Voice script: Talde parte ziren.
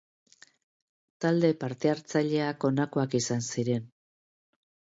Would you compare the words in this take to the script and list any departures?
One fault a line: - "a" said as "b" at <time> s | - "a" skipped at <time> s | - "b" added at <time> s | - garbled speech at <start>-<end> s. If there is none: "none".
- "hartzaileak honakoak izan" added at 1.9 s